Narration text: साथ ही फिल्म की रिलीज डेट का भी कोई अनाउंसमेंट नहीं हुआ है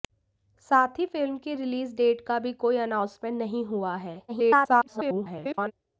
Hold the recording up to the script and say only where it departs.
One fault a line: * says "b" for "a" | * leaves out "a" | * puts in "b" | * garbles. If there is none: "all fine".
* garbles